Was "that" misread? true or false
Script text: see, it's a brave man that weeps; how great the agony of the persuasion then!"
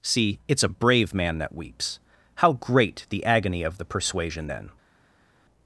false